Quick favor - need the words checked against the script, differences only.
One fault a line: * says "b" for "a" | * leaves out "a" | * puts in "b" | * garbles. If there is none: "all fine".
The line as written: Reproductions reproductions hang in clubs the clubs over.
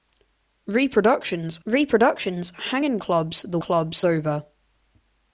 all fine